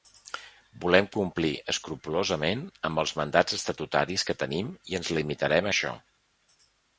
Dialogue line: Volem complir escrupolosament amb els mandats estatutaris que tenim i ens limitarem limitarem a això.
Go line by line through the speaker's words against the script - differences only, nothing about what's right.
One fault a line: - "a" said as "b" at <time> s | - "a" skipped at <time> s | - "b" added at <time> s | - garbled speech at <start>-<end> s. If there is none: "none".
- "limitarem" skipped at 5.7 s